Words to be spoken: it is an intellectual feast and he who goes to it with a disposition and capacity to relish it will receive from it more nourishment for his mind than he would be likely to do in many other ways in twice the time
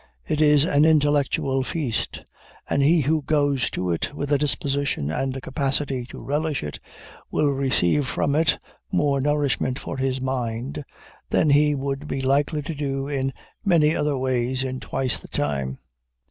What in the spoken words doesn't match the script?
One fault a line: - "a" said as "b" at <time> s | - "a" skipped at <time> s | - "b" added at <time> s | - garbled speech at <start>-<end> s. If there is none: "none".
none